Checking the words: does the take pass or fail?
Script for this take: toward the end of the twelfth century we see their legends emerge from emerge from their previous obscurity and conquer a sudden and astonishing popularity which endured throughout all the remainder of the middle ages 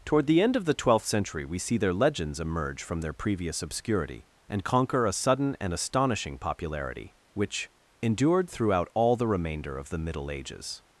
fail